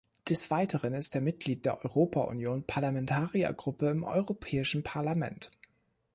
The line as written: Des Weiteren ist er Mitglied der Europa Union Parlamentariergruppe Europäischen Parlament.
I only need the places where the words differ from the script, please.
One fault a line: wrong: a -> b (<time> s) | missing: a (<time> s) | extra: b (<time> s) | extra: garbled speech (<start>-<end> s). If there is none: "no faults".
extra: im (3.9 s)